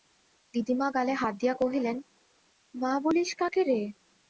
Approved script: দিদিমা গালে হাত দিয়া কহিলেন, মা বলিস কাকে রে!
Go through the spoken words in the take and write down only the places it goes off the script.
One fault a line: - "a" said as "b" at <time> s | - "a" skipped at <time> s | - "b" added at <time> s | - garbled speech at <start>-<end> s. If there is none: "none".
none